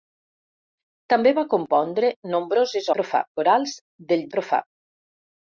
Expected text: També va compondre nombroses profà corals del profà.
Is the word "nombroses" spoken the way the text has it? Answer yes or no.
yes